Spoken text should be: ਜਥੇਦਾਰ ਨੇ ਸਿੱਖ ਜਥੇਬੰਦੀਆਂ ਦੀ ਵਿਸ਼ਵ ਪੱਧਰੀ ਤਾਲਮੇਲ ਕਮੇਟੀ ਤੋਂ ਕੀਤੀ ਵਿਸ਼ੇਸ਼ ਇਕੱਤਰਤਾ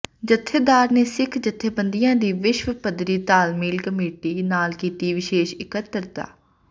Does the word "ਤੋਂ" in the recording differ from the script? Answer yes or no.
yes